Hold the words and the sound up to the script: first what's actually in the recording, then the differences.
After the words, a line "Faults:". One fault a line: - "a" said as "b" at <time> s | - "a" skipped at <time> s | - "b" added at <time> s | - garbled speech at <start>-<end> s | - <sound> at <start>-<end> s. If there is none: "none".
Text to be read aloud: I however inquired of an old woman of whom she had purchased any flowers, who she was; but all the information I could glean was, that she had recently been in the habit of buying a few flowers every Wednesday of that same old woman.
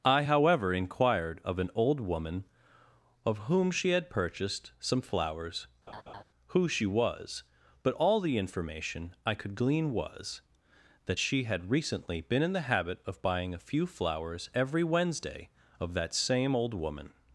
I however inquired of an old woman of whom she had purchased some flowers, who she was; but all the information I could glean was, that she had recently been in the habit of buying a few flowers every Wednesday of that same old woman.
Faults:
- "any" said as "some" at 4.8 s
- laugh at 5.9-6.2 s